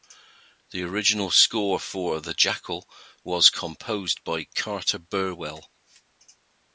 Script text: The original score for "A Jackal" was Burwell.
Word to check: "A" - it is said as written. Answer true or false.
false